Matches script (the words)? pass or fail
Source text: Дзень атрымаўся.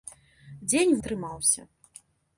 pass